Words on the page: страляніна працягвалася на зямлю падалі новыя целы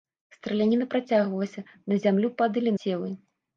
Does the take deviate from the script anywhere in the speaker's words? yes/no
yes